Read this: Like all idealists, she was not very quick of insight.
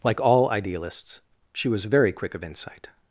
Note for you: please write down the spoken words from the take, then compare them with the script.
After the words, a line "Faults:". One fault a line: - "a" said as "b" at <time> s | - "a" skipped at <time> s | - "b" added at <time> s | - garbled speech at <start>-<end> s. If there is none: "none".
Like all idealists, she was very quick of insight.
Faults:
- "not" skipped at 1.9 s